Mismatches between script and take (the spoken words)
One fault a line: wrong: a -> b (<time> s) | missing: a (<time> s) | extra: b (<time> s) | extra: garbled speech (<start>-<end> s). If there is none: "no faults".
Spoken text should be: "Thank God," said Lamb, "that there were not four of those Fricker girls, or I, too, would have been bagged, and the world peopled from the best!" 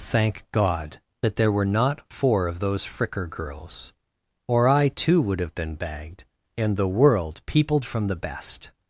missing: said Lamb (1.0 s)